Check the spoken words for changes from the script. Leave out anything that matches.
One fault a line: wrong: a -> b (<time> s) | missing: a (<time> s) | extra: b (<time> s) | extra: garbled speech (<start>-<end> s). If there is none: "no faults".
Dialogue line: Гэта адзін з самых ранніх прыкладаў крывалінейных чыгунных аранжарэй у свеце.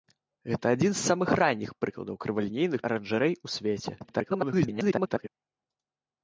missing: чыгунных (2.8 s)
extra: garbled speech (4.0-5.3 s)